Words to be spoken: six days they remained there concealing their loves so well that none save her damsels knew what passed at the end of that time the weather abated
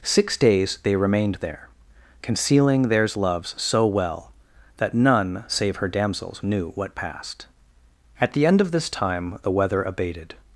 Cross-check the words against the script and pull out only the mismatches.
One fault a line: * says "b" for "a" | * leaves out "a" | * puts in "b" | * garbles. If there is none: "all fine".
* says "theirs" for "their"
* says "this" for "that"